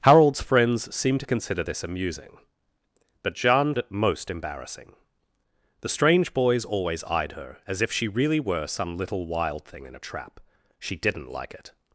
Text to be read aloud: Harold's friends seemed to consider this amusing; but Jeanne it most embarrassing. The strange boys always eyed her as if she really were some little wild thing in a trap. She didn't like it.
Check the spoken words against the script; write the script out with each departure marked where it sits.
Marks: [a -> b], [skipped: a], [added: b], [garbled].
Harold's friends seemed to consider this amusing; but Jeanne it most embarrassing. The strange boys always eyed her as if she really were some little wild thing in a trap. She didn't like it.